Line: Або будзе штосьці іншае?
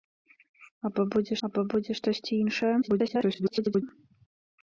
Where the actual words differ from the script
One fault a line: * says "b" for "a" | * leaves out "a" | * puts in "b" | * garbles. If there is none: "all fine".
* puts in "або будзе"
* garbles